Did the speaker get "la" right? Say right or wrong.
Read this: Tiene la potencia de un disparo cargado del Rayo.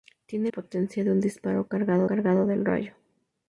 wrong